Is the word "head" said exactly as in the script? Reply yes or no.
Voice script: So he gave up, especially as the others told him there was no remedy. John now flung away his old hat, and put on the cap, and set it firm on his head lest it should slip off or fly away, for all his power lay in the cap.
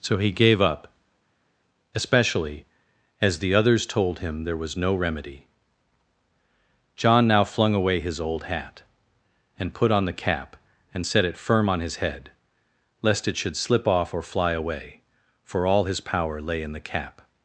yes